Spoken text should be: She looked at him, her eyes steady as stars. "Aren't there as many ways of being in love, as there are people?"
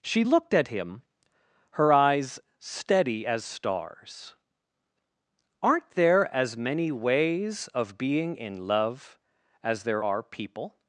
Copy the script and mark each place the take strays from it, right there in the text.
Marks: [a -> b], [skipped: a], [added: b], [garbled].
She looked at him, her eyes steady as stars. "Aren't there as many ways of being in love, as there are people?"